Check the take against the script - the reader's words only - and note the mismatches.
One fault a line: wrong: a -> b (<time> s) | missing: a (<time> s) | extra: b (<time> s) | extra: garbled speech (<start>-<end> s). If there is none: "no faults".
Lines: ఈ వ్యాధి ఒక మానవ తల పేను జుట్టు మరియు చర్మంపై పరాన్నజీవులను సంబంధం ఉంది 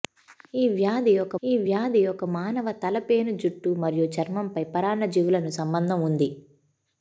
extra: ఈ వ్యాధి ఒక (1.4 s)